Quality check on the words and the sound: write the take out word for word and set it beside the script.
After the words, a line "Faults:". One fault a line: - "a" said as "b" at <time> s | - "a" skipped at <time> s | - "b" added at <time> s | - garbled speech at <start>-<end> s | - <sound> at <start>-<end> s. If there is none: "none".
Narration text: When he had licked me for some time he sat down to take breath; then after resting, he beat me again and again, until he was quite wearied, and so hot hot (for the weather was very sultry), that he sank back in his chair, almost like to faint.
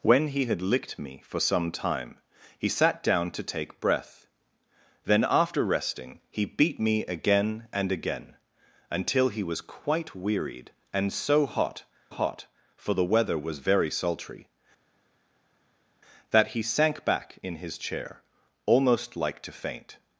When he had licked me for some time he sat down to take breath; then after resting, he beat me again and again, until he was quite wearied, and so hot hot (for the weather was very sultry), that he sank back in his chair, almost like to faint.
Faults:
none